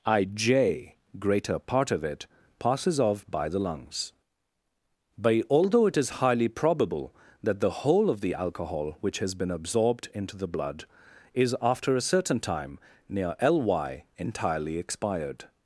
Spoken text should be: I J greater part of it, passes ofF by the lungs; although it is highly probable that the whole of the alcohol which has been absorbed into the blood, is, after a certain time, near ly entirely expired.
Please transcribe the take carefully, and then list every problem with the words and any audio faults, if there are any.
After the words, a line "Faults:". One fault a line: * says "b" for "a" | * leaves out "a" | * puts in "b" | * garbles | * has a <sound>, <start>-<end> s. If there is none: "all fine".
I J greater part of it, passes ofF by the lungs; but although it is highly probable that the whole of the alcohol which has been absorbed into the blood, is, after a certain time, near ly entirely expired.
Faults:
* puts in "but"